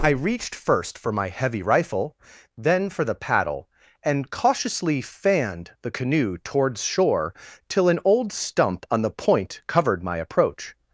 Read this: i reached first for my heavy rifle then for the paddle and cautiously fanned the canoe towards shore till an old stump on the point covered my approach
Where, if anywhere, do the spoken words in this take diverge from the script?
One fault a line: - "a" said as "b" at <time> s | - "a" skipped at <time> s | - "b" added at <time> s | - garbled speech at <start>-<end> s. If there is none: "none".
none